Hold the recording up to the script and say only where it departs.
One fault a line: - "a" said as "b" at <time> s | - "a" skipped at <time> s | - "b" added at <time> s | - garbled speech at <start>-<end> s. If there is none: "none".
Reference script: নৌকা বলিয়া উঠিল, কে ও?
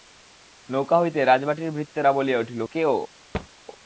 - "হইতে রাজবাটীর ভৃত্যেরা" added at 1.0 s